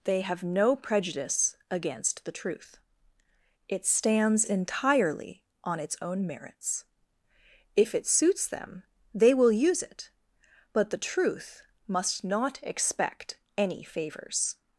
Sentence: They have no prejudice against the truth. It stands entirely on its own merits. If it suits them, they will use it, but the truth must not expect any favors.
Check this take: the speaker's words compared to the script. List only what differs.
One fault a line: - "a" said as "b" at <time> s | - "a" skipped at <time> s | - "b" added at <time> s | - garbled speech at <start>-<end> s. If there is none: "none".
none